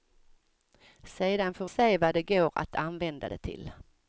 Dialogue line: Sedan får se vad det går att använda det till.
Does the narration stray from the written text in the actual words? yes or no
no